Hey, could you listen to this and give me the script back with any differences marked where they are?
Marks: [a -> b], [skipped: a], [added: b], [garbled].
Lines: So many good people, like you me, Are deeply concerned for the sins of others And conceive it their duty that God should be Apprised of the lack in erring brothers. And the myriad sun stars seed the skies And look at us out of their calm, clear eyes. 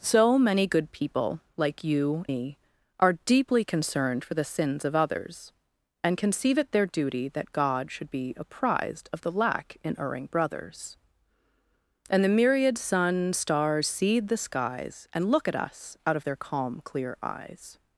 So many good people, like you me, Are deeply concerned for the sins of others And conceive it their duty that God should be Apprised of the lack in erring brothers. And the myriad sun stars seed the skies And look at us out of their calm, clear eyes.